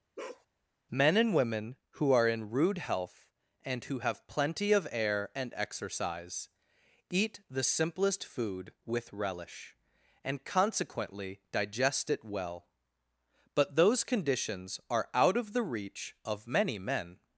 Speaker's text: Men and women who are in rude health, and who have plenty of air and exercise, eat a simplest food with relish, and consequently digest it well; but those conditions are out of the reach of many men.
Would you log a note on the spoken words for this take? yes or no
yes